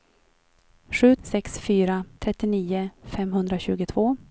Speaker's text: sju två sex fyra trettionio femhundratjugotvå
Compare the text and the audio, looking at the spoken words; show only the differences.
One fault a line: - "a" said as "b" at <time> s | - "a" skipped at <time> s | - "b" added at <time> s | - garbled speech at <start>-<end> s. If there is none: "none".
- "två" skipped at 1.1 s